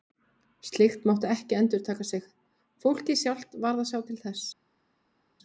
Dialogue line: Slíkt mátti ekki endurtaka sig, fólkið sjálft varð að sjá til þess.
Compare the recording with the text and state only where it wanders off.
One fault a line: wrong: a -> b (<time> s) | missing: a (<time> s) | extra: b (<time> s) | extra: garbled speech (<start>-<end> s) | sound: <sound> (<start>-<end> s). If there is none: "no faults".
no faults